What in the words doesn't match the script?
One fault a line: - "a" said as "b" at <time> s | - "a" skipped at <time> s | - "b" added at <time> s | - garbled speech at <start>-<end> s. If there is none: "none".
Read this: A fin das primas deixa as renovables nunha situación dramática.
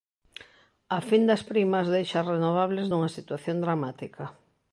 none